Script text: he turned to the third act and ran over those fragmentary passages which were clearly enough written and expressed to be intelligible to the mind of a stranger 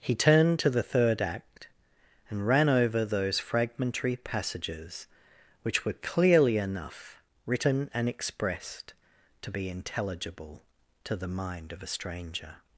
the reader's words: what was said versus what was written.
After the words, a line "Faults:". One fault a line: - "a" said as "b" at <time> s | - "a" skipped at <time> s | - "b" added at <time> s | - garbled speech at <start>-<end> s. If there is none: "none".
he turned to the third act and ran over those fragmentary passages which were clearly enough written and expressed to be intelligible to the mind of a stranger
Faults:
none